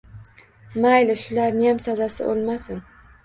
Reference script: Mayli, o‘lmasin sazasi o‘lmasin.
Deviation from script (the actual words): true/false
true